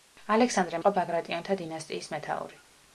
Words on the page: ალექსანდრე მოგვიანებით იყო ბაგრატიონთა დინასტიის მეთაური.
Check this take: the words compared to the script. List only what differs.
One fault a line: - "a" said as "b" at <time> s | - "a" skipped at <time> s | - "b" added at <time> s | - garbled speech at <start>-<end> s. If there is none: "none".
- "მოგვიანებით" skipped at 0.8 s